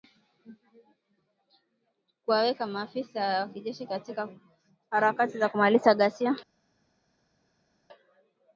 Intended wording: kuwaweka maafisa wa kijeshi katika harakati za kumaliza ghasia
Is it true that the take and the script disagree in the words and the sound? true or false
false